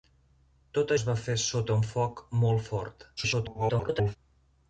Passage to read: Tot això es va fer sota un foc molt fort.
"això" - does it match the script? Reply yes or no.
no